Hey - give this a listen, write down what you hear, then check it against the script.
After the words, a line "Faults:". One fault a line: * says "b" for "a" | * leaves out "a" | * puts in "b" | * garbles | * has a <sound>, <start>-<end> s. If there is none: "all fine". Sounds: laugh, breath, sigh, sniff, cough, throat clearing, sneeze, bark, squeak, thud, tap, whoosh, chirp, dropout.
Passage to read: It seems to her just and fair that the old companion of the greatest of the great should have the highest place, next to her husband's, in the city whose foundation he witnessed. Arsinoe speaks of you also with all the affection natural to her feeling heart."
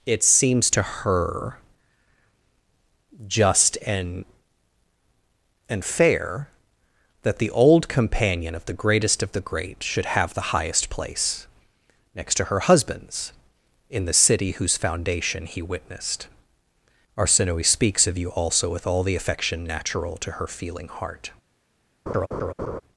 It seems to her just and and fair that the old companion of the greatest of the great should have the highest place, next to her husband's, in the city whose foundation he witnessed. Arsinoe speaks of you also with all the affection natural to her feeling heart."
Faults:
* puts in "and"
* has a laugh, 22.1-22.8 s